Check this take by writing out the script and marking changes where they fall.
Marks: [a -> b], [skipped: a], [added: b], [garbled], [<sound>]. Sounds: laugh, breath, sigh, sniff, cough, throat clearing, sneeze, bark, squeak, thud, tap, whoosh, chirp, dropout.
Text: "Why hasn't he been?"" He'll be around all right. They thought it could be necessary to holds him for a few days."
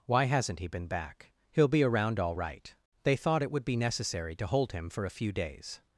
"Why hasn't he been?"" [added: back] He'll be around all right. They thought it [could -> would] be necessary to [holds -> hold] him for a few days."